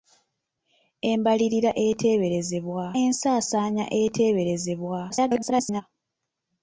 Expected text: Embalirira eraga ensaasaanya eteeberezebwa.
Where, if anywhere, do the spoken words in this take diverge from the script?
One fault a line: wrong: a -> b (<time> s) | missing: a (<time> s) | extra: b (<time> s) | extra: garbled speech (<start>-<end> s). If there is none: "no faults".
wrong: eraga -> eteeberezebwa (1.9 s)
extra: garbled speech (5.1-5.8 s)